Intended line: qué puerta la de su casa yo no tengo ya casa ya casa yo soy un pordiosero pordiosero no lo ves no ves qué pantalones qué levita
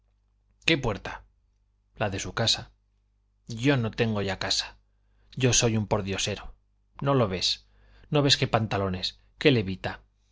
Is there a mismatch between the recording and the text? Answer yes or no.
yes